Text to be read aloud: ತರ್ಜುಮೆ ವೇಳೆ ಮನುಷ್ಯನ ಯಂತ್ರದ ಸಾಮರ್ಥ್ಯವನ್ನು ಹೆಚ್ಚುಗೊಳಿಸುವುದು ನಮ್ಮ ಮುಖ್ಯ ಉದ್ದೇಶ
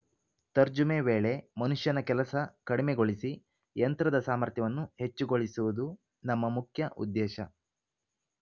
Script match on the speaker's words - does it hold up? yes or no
no